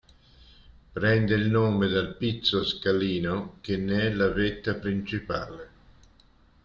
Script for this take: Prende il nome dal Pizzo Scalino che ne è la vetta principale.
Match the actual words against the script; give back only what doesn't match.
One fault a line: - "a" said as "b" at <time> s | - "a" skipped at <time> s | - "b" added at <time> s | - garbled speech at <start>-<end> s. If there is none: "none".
none